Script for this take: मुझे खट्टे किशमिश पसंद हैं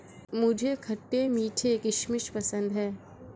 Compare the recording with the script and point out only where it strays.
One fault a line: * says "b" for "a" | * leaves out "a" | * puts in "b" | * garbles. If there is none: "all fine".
* puts in "मीठे"